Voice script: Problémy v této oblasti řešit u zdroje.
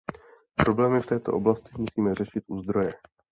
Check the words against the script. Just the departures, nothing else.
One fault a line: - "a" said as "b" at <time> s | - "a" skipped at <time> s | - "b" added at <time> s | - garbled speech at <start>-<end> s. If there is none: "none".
- "musíme" added at 1.8 s